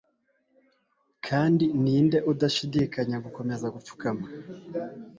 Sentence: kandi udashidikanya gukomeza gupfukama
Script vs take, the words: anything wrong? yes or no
yes